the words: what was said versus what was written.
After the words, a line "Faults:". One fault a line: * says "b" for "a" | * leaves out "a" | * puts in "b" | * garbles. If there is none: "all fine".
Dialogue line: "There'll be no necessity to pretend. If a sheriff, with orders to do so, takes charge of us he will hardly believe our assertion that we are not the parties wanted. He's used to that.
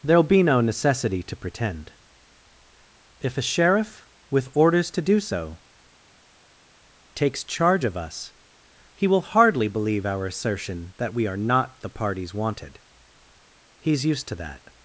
"There'll be no necessity to pretend. If a sheriff, with orders to do so, takes charge of us he will hardly believe our assertion that we are not the parties wanted. He's used to that.
Faults:
all fine